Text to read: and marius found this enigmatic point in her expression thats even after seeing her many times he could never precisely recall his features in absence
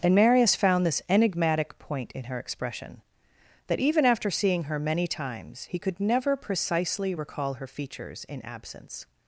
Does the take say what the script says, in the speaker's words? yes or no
no